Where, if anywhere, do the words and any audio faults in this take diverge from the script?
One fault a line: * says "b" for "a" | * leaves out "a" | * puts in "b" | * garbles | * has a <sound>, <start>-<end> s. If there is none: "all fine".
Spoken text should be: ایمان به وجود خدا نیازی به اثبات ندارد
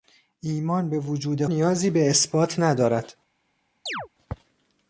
* leaves out "خدا"
* has a chirp, 3.9-4.1 s